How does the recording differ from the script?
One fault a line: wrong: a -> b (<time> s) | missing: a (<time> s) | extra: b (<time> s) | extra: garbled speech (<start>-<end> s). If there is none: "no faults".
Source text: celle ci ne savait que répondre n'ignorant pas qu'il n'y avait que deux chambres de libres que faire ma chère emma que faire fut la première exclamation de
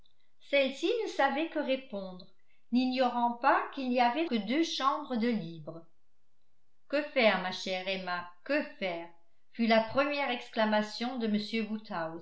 no faults